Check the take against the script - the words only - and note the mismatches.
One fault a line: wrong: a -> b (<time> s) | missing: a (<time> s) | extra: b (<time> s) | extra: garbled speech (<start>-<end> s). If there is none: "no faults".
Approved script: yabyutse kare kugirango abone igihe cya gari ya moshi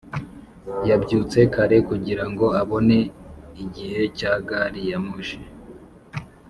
no faults